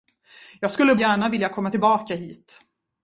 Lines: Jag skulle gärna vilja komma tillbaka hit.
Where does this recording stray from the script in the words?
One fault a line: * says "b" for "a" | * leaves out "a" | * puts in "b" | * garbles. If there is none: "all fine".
all fine